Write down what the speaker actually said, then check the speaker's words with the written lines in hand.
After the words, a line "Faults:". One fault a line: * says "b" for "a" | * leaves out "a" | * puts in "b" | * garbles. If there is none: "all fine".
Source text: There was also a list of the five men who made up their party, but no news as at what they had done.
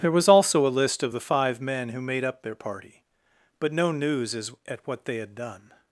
There was also a list of the five men who made up their party, but no news as at what they had done.
Faults:
all fine